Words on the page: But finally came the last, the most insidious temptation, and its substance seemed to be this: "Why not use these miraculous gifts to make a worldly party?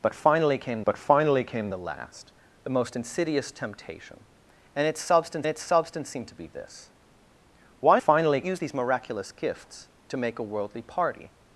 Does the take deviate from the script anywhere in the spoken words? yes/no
yes